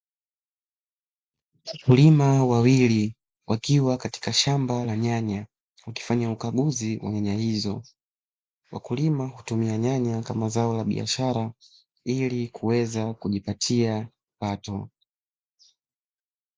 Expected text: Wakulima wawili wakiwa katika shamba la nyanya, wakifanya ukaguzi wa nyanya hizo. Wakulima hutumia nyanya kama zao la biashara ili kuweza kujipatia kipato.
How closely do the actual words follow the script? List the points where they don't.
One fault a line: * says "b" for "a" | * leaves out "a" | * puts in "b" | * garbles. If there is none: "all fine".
all fine